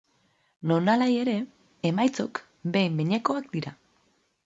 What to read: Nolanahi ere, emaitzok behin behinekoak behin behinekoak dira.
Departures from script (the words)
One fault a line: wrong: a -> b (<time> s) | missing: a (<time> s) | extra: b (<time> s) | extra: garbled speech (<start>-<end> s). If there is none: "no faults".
missing: behin behinekoak (3.5 s)